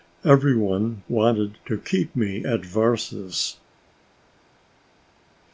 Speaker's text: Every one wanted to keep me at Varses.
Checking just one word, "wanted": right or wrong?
right